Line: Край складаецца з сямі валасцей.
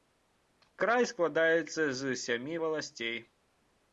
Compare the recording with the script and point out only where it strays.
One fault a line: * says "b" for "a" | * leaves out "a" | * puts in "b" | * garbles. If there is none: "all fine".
all fine